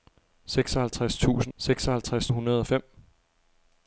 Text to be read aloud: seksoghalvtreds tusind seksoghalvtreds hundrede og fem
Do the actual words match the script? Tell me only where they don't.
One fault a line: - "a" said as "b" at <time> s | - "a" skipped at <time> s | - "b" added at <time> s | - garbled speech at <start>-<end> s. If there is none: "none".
none